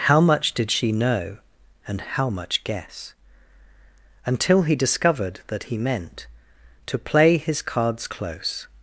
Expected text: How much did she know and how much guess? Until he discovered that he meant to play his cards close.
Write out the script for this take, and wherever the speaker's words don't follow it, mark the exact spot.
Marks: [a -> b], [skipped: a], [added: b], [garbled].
How much did she know and how much guess? Until he discovered that he meant to play his cards close.